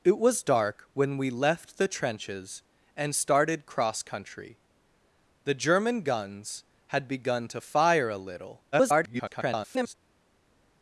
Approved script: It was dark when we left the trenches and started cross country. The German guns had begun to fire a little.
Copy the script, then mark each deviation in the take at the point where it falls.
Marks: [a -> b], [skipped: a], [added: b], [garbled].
It was dark when we left the trenches and started cross country. The German guns had begun to fire a little. [garbled]